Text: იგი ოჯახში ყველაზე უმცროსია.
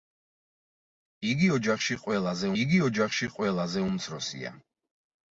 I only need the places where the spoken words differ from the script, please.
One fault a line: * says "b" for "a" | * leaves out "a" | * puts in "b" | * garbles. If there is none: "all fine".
* puts in "იგი ოჯახში ყველაზე"